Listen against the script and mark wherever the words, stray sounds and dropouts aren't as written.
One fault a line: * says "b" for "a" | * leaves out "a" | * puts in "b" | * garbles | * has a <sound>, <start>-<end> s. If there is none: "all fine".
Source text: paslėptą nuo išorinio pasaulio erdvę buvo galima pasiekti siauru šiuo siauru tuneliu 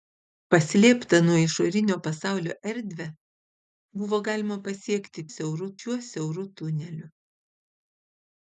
all fine